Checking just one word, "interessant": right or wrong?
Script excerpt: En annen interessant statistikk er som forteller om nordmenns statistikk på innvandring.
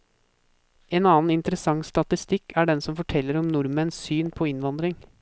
right